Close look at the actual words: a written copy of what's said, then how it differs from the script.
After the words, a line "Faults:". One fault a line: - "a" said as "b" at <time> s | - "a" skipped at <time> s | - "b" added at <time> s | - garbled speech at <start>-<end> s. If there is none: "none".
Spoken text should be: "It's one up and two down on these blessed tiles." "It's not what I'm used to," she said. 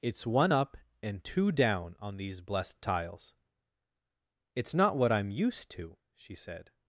"It's one up and two down on these blessed tiles." "It's not what I'm used to," she said.
Faults:
none